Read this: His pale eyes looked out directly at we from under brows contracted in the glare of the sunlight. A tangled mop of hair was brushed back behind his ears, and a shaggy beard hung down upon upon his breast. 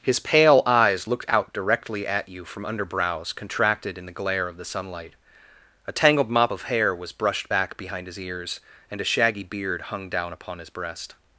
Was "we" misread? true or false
true